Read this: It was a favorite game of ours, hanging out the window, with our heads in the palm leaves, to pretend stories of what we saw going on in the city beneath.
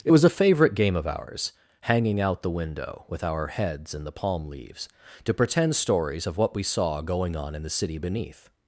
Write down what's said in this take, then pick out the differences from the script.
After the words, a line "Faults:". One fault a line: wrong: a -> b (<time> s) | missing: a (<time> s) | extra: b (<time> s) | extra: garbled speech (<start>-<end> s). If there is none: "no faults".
It was a favorite game of ours, hanging out the window, with our heads in the palm leaves, to pretend stories of what we saw going on in the city beneath.
Faults:
no faults